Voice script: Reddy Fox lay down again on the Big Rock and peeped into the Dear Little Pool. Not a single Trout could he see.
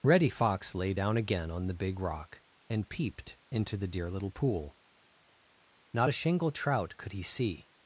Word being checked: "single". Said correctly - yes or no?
no